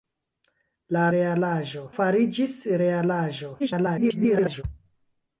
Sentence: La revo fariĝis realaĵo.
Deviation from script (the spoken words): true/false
true